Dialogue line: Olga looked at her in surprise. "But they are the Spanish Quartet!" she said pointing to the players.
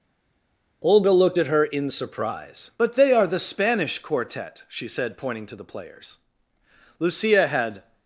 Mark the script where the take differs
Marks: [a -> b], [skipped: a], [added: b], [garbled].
Olga looked at her in surprise. "But they are the Spanish Quartet!" she said pointing to the players. [added: Lucia had]